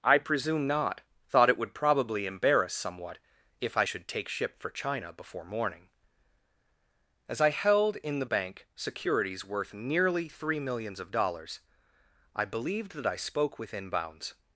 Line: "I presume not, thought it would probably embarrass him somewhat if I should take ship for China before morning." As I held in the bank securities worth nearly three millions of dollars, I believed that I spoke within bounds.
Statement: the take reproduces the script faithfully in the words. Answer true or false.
false